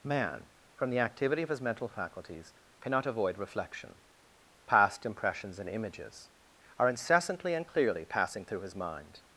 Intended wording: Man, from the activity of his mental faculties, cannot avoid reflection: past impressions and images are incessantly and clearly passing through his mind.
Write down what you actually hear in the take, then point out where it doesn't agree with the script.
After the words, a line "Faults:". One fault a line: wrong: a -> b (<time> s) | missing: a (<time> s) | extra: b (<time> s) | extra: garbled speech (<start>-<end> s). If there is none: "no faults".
Man, from the activity of his mental faculties, cannot avoid reflection: past impressions and images are incessantly and clearly passing through his mind.
Faults:
no faults